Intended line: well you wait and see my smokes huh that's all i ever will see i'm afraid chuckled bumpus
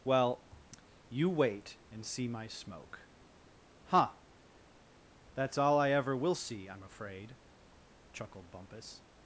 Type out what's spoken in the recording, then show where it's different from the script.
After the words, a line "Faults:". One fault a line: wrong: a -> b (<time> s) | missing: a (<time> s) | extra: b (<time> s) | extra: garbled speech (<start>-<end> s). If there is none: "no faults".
well you wait and see my smoke huh that's all i ever will see i'm afraid chuckled bumpus
Faults:
wrong: smokes -> smoke (2.5 s)